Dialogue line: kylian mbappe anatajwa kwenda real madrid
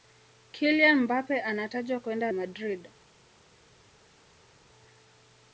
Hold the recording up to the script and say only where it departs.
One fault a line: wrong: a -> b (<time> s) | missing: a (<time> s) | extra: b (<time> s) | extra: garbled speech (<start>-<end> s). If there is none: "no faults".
missing: real (2.3 s)